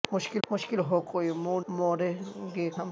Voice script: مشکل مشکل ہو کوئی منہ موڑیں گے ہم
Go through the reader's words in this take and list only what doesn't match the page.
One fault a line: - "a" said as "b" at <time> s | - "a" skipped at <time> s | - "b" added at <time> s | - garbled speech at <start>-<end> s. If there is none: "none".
none